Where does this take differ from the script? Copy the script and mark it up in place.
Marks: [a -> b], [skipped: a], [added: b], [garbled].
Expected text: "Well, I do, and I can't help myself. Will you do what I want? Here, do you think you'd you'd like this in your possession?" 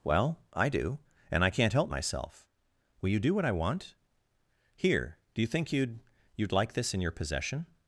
"Well, I do, and I can't help myself. Will you do what I want? Here, do you think you'd you'd like this in your possession?"